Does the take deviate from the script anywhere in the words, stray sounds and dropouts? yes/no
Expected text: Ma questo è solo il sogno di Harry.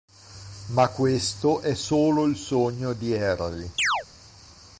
yes